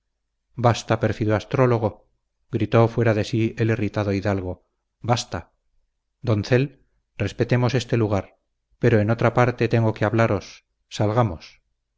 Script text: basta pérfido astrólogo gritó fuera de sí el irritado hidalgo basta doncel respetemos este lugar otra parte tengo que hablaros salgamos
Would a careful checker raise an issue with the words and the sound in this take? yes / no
yes